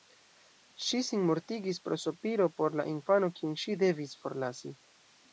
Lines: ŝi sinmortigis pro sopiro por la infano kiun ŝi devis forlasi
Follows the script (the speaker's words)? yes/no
yes